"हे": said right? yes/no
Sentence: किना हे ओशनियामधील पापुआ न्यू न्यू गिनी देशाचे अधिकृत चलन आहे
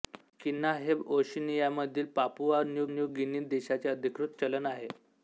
yes